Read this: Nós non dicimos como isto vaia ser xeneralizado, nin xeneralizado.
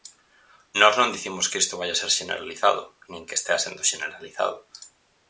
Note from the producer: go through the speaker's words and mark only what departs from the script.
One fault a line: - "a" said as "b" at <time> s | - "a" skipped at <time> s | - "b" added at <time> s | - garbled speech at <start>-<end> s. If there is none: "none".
- "como" said as "que" at 1.5 s
- "que estea sendo" added at 3.3 s